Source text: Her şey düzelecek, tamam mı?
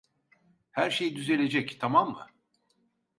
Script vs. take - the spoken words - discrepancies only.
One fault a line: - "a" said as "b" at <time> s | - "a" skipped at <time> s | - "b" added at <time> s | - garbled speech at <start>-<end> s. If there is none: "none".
none